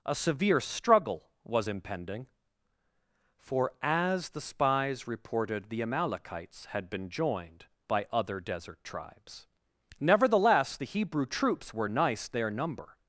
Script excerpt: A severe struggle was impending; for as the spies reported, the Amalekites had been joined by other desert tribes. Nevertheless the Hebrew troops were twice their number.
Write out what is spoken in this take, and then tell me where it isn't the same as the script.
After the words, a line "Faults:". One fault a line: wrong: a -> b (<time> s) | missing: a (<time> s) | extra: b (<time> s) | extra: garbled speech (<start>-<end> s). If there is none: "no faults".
A severe struggle was impending; for as the spies reported, the Amalekites had been joined by other desert tribes. Nevertheless the Hebrew troops were nice their number.
Faults:
wrong: twice -> nice (11.9 s)